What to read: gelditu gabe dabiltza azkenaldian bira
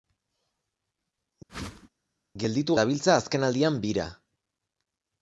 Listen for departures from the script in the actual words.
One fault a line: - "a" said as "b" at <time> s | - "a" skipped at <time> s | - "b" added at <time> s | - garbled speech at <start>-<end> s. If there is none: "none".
- "gabe" skipped at 2.8 s